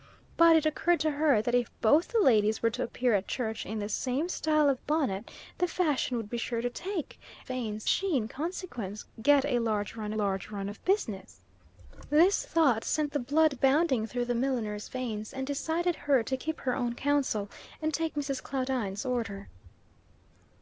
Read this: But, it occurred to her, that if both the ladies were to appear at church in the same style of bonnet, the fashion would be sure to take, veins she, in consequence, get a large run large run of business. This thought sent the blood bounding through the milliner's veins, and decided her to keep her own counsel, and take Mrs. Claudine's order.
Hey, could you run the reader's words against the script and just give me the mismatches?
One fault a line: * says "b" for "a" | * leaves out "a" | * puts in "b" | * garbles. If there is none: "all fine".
all fine